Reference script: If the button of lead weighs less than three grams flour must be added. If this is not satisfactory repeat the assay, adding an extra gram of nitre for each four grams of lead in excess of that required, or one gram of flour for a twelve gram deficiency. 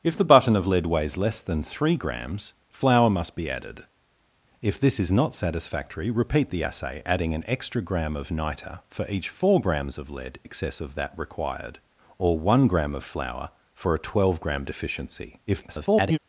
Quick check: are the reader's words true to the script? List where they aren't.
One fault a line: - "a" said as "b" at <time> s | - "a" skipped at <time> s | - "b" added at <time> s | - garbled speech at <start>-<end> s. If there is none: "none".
- "in" skipped at 10.4 s
- garbled speech at 15.5-16.2 s